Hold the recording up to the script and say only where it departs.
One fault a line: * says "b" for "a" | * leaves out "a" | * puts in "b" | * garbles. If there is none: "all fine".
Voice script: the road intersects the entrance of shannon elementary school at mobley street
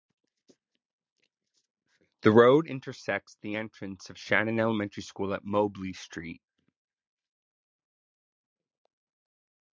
all fine